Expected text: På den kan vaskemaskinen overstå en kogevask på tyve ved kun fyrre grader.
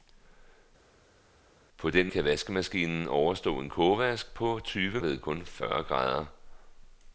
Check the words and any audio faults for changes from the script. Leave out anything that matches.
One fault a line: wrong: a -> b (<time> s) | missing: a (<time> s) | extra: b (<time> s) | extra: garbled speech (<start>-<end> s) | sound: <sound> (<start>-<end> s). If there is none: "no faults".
no faults